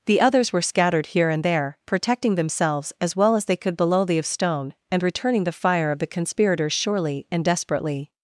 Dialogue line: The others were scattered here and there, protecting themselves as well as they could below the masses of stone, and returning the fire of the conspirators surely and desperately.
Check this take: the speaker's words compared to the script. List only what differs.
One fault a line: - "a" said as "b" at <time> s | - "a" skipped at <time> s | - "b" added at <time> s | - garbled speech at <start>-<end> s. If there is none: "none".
- "masses" skipped at 4.2 s